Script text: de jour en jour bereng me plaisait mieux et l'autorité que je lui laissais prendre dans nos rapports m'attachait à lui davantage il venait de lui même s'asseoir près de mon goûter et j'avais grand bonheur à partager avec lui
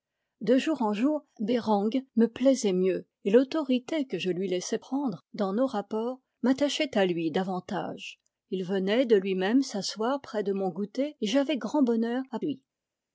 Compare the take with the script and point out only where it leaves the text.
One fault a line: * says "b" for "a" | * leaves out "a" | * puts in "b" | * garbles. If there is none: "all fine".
* leaves out "partager avec"